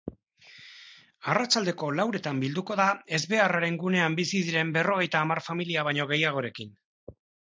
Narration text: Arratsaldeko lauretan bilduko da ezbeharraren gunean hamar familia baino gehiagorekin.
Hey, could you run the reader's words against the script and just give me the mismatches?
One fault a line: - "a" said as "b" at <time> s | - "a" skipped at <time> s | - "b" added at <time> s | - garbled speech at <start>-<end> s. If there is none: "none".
- "bizi diren berrogeita" added at 4.2 s